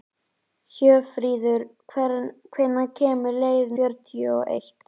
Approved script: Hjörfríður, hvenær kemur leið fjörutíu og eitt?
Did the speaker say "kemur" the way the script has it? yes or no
yes